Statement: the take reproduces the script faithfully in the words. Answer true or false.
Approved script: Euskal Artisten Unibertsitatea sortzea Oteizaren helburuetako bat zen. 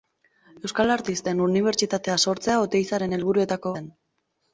false